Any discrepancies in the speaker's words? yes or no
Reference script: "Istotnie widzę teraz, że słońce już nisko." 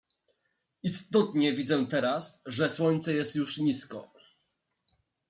yes